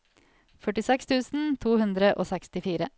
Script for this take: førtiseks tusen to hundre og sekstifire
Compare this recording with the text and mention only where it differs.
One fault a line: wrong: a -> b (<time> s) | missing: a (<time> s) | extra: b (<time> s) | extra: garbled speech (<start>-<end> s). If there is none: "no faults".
no faults